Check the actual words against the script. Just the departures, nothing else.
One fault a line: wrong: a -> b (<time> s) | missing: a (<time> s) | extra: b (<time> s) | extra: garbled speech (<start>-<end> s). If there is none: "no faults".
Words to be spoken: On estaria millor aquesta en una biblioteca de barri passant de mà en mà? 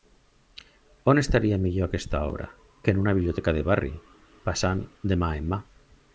extra: obra que (2.3 s)